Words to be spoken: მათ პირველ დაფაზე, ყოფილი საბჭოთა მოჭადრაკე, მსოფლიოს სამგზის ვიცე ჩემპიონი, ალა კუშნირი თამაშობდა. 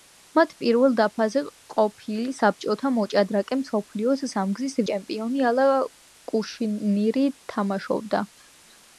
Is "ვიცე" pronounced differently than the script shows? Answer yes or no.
yes